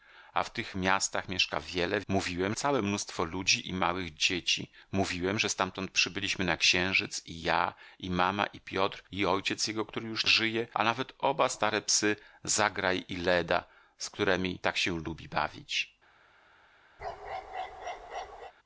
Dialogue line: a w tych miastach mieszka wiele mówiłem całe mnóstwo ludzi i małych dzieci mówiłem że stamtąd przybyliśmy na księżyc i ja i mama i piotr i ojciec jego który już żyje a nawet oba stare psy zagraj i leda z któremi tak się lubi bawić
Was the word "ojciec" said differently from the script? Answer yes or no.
no